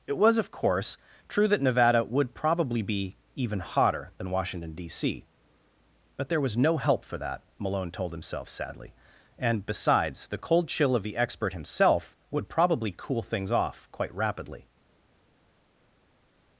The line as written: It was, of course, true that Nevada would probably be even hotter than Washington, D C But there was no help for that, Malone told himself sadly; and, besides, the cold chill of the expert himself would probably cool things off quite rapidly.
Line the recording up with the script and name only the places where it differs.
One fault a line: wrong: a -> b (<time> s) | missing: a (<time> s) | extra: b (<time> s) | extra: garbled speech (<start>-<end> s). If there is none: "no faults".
no faults